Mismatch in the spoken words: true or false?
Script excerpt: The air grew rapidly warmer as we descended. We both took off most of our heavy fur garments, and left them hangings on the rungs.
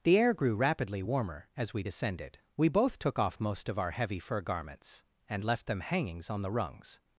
false